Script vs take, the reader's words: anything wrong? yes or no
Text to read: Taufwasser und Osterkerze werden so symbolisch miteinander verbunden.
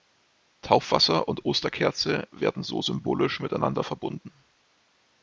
no